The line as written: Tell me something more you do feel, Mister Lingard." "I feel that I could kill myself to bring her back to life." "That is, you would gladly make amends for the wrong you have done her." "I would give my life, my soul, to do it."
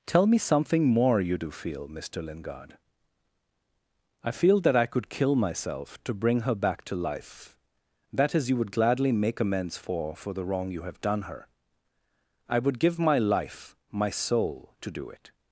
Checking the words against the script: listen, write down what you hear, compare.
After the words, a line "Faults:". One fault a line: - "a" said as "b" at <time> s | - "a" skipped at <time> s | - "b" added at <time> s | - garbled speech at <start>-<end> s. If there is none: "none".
Tell me something more you do feel, Mister Lingard." "I feel that I could kill myself to bring her back to life." "That is, you would gladly make amends for for the wrong you have done her." "I would give my life, my soul, to do it."
Faults:
- "for" added at 10.2 s